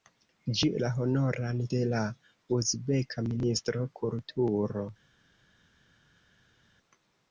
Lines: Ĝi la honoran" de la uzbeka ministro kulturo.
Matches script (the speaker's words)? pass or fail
pass